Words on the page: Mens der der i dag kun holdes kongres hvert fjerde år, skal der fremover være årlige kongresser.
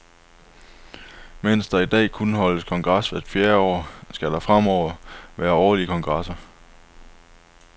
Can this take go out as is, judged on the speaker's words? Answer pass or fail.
fail